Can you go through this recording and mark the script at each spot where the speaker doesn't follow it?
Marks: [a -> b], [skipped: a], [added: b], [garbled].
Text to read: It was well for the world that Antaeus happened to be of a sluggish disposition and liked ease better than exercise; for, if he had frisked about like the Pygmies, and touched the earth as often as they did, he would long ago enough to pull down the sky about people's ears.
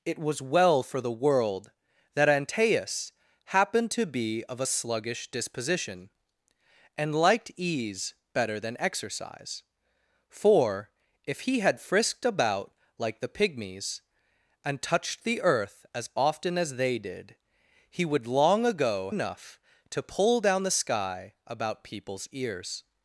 It was well for the world that Antaeus happened to be of a sluggish disposition and liked ease better than exercise; for, if he had frisked about like the Pygmies, and touched the earth as often as they did, he would long ago enough to pull down the sky about people's ears.